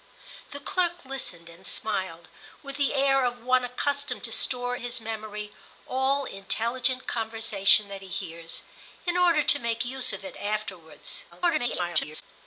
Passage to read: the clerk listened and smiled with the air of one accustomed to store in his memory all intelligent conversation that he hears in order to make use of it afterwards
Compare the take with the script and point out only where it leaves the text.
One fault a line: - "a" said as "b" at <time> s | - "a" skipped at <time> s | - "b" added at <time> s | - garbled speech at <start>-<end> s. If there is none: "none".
- "in" skipped at 4.8 s
- garbled speech at 11.3-12.2 s